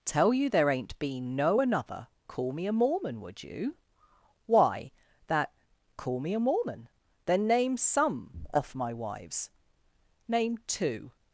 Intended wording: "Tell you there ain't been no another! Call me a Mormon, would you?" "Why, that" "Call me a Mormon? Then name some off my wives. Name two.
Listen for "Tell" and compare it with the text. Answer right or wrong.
right